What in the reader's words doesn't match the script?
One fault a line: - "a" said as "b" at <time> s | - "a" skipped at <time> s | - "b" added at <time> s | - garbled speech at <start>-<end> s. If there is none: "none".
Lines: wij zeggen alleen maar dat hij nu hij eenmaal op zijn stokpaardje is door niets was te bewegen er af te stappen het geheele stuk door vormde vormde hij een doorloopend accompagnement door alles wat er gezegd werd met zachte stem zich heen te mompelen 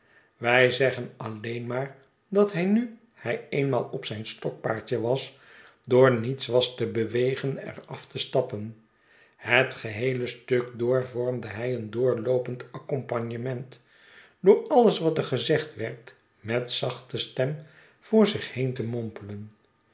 - "is" said as "was" at 5.0 s
- "vormde" skipped at 11.5 s
- "voor" added at 18.0 s